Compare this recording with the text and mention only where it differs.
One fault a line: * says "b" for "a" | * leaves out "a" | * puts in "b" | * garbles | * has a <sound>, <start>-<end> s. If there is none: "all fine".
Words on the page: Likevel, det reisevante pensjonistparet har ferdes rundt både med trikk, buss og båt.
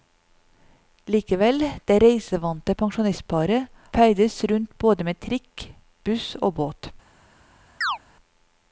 * leaves out "har"
* has a chirp, 7.8-8.0 s